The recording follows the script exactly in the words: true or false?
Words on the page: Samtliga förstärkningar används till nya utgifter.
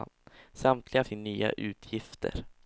false